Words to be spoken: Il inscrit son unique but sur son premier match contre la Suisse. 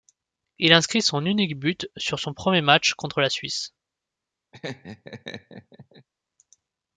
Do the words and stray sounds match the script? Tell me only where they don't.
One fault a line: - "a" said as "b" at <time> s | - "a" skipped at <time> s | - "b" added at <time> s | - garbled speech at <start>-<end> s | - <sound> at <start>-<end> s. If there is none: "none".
- laugh at 4.5-6.1 s